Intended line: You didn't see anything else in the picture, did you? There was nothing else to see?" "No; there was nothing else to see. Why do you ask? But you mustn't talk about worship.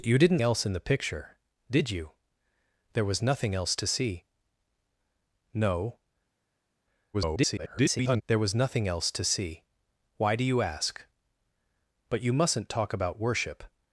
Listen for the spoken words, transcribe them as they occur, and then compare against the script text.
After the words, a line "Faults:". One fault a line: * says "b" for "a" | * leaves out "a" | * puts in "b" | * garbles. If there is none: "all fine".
You didn't else in the picture, did you? There was nothing else to see?" "No; [garbled] there was nothing else to see. Why do you ask? But you mustn't talk about worship.
Faults:
* leaves out "see anything"
* garbles